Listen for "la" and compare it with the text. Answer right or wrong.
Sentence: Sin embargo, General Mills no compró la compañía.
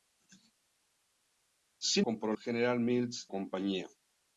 wrong